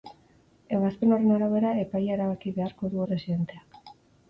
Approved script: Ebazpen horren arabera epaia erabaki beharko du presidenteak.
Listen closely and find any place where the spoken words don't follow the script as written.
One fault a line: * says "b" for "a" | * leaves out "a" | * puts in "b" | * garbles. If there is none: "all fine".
all fine